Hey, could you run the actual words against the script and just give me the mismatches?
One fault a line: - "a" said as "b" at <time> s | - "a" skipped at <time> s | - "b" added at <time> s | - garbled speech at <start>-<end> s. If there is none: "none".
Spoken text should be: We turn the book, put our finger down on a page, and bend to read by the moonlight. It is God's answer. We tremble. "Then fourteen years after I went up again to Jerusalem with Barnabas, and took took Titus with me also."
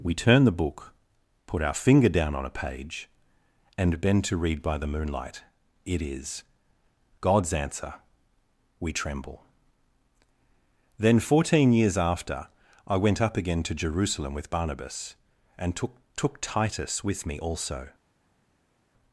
none